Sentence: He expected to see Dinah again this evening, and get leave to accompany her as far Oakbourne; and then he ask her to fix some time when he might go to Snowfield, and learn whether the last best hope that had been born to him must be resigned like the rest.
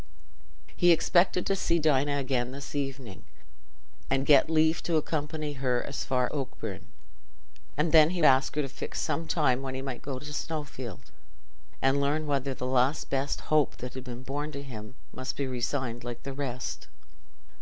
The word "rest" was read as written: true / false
true